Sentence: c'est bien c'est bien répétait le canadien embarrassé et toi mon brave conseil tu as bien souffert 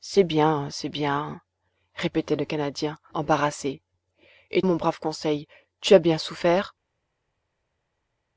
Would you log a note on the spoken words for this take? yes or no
yes